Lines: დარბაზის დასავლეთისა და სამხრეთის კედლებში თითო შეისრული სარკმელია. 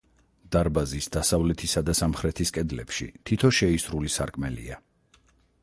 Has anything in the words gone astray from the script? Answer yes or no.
no